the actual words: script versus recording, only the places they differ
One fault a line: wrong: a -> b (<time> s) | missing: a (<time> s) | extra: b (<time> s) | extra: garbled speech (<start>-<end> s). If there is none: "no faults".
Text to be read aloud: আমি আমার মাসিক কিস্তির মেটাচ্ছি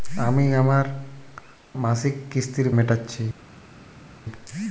no faults